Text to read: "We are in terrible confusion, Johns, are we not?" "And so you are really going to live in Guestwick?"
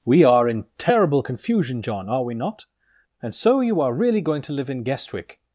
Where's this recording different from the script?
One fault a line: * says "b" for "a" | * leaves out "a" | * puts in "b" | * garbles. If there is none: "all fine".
* says "John" for "Johns"